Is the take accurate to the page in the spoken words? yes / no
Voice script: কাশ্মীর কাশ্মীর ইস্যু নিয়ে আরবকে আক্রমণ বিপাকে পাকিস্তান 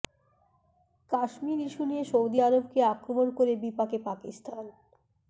no